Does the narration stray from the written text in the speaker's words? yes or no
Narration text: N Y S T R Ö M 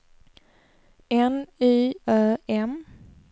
yes